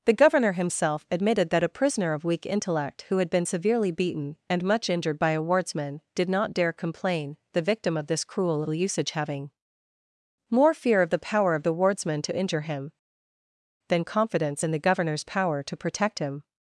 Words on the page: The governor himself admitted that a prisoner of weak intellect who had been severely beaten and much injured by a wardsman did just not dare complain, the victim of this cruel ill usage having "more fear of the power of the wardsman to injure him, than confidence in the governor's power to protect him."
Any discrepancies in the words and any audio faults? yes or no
yes